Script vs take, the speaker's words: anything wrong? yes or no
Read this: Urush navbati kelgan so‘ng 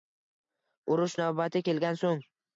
no